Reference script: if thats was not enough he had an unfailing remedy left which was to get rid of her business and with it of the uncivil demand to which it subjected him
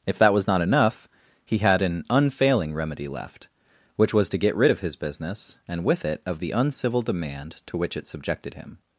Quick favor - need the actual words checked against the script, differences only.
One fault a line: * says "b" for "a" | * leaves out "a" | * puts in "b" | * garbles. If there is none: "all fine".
* says "that" for "thats"
* says "his" for "her"